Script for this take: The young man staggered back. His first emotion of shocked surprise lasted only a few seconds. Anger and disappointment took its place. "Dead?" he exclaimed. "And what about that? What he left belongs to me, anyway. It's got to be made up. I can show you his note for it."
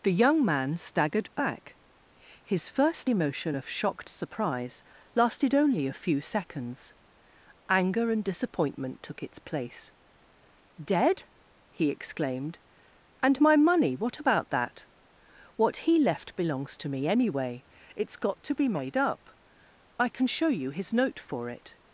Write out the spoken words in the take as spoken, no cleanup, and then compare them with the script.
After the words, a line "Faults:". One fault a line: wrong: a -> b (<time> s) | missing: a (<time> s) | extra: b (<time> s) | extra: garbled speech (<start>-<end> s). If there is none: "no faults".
The young man staggered back. His first emotion of shocked surprise lasted only a few seconds. Anger and disappointment took its place. "Dead?" he exclaimed. "And my money what about that? What he left belongs to me, anyway. It's got to be made up. I can show you his note for it."
Faults:
extra: my money (13.4 s)